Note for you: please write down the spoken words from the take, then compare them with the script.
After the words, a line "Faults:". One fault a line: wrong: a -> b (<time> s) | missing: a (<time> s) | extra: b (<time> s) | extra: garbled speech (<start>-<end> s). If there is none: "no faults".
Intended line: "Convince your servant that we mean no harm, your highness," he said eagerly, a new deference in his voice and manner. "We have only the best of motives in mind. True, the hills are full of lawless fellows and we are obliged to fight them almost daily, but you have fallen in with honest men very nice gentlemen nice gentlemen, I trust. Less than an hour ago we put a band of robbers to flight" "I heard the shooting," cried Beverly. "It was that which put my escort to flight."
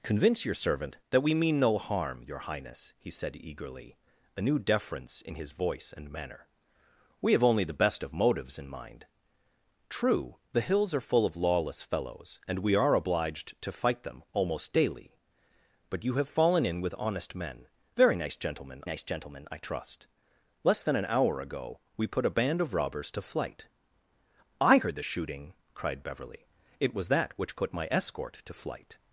"Convince your servant that we mean no harm, your highness," he said eagerly, a new deference in his voice and manner. "We have only the best of motives in mind. True, the hills are full of lawless fellows and we are obliged to fight them almost daily, but you have fallen in with honest men very nice gentlemen nice gentlemen, I trust. Less than an hour ago we put a band of robbers to flight" "I heard the shooting," cried Beverly. "It was that which put my escort to flight."
Faults:
no faults